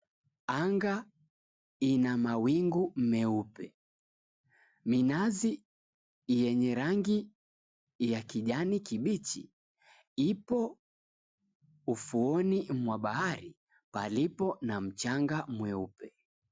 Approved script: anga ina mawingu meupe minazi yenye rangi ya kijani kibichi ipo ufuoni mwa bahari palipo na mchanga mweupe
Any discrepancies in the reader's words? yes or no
no